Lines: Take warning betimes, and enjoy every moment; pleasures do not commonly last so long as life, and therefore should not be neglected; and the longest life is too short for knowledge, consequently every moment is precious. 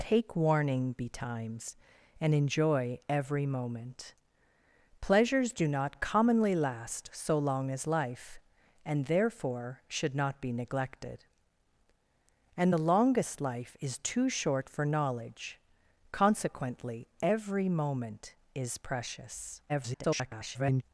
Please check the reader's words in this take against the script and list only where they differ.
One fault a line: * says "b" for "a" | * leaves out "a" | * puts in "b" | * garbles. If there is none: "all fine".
* garbles